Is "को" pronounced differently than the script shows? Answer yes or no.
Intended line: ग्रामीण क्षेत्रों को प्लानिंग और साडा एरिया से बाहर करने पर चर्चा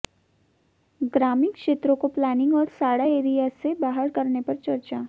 no